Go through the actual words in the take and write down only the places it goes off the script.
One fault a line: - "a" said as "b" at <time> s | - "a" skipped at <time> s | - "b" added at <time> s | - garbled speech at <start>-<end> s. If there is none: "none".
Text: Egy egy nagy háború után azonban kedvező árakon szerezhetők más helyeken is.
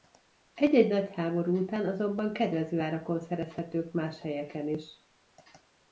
none